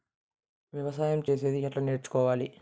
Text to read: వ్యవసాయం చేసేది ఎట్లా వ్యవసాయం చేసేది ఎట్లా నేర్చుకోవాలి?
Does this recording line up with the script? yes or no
no